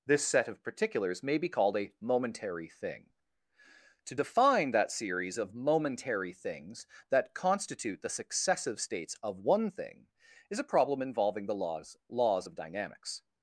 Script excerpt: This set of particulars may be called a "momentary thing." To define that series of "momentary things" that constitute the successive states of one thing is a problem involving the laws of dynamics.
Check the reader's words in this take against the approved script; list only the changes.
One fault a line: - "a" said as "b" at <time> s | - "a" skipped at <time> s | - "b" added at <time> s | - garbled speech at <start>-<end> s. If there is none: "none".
- "laws" added at 12.1 s